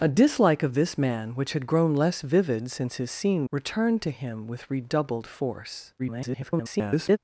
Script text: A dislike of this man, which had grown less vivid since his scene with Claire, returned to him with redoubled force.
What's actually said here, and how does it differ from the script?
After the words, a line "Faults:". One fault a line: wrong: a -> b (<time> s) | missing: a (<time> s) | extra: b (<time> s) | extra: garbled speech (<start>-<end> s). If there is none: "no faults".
A dislike of this man, which had grown less vivid since his scene returned to him with redoubled force. [garbled]
Faults:
missing: with Claire (3.5 s)
extra: garbled speech (6.0-7.2 s)